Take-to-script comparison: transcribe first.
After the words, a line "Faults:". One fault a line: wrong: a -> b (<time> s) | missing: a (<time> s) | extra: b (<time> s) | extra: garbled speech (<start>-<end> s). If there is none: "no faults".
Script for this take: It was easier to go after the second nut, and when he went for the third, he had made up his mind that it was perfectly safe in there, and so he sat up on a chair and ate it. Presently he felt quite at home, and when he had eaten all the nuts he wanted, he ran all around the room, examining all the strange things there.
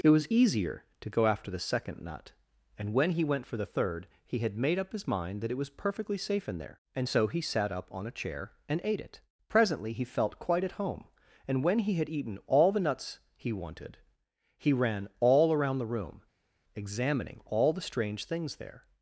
It was easier to go after the second nut, and when he went for the third, he had made up his mind that it was perfectly safe in there, and so he sat up on a chair and ate it. Presently he felt quite at home, and when he had eaten all the nuts he wanted, he ran all around the room, examining all the strange things there.
Faults:
no faults